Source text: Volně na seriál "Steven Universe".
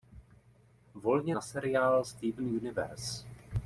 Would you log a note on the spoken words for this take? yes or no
no